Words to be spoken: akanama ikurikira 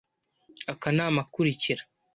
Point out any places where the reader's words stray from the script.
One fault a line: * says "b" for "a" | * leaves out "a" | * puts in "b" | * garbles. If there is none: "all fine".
all fine